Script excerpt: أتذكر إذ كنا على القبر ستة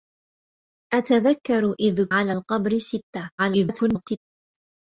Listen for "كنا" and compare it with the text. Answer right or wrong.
wrong